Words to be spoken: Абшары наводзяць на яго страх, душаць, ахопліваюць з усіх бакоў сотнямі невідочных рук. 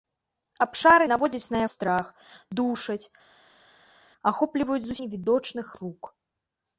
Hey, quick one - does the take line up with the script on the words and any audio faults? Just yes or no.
no